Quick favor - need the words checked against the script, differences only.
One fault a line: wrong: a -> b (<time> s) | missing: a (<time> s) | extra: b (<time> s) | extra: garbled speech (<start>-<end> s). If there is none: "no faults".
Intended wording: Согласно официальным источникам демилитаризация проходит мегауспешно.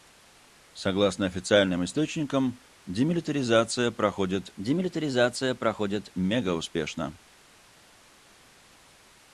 extra: демилитаризация проходит (4.6 s)